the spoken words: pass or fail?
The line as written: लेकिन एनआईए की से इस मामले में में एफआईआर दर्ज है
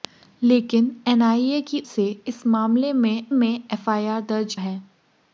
pass